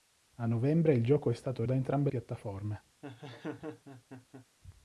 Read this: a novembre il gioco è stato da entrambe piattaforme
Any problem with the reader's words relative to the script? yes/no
no